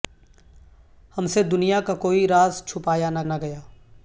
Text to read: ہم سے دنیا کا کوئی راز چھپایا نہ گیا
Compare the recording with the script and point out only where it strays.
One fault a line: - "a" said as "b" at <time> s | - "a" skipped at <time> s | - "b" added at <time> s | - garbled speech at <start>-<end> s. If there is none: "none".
- "نہ" added at 3.2 s